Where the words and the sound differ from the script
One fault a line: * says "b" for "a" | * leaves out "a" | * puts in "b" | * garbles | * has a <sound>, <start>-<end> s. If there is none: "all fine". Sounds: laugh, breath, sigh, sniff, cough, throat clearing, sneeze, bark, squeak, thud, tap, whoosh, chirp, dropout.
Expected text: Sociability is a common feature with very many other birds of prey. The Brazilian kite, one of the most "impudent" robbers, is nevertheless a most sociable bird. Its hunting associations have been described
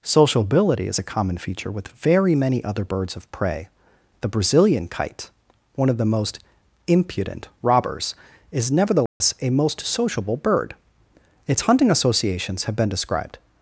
* has a dropout, 9.1-9.2 s